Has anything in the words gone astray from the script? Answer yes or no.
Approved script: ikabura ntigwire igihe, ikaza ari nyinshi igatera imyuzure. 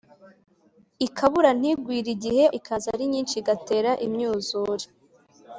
no